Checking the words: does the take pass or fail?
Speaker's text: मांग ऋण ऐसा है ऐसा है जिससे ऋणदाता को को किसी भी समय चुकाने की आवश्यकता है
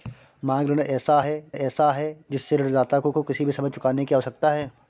pass